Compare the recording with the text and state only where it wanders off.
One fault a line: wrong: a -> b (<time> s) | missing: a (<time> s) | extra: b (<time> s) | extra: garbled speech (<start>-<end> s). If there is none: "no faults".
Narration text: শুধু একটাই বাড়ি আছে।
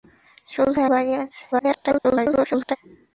missing: একটাই (0.8 s)
extra: garbled speech (1.5-2.8 s)